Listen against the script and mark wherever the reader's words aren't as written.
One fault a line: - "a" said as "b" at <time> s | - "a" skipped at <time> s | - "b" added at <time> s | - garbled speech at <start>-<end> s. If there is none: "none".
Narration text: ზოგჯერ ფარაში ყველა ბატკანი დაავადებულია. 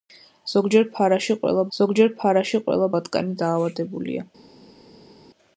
- "ზოგჯერ ფარაში ყველა" added at 1.8 s